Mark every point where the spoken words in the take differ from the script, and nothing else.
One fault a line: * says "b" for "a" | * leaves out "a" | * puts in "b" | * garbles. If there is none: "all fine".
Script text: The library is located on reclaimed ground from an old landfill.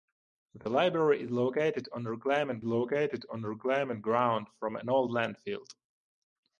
* puts in "located on reclaimed"